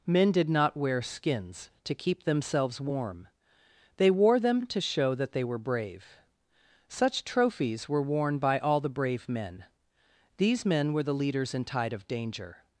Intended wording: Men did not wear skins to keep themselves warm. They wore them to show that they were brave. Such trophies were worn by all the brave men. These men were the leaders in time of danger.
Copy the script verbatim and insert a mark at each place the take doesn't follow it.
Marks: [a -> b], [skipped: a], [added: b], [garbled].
Men did not wear skins to keep themselves warm. They wore them to show that they were brave. Such trophies were worn by all the brave men. These men were the leaders in [time -> tide] of danger.